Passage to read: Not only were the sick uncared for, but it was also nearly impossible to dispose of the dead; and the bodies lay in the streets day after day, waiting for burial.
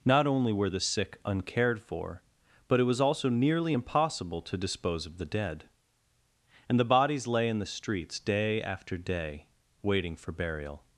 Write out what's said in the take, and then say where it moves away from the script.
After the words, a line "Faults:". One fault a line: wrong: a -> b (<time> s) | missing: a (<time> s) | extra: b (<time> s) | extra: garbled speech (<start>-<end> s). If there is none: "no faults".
Not only were the sick uncared for, but it was also nearly impossible to dispose of the dead; and the bodies lay in the streets day after day, waiting for burial.
Faults:
no faults